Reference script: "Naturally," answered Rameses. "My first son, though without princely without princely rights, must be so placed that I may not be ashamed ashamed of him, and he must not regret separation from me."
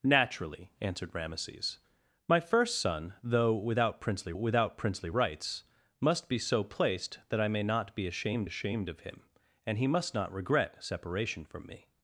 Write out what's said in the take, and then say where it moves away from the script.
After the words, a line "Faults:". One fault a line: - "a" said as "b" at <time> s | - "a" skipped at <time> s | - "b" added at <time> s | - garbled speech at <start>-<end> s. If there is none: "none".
"Naturally," answered Rameses. "My first son, though without princely without princely rights, must be so placed that I may not be ashamed ashamed of him, and he must not regret separation from me."
Faults:
none